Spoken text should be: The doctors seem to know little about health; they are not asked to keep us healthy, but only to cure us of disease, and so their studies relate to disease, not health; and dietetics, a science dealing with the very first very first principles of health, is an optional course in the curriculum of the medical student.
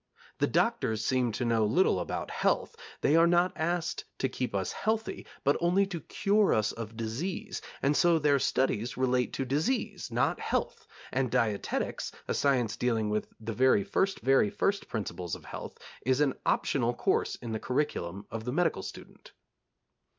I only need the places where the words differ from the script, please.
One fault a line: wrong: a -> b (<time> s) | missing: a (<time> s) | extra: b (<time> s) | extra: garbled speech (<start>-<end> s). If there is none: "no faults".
no faults